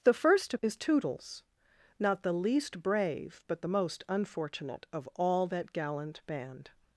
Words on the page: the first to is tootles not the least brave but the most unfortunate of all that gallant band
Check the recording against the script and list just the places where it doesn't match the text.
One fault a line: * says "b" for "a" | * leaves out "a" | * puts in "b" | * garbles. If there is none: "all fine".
all fine